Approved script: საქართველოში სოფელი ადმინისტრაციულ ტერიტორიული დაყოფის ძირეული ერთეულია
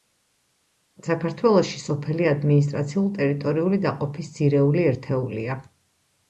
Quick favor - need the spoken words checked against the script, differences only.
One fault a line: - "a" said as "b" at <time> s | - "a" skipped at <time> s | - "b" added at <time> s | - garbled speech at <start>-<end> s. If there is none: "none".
none